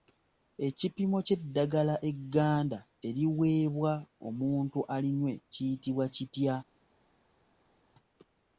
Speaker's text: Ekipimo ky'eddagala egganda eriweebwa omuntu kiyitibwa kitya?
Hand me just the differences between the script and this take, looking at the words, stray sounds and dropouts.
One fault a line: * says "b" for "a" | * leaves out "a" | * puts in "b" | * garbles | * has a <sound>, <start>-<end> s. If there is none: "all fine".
* puts in "alinywe"